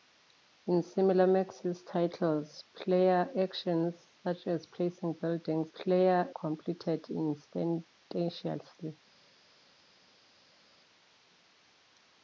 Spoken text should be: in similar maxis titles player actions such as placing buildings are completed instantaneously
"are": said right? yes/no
no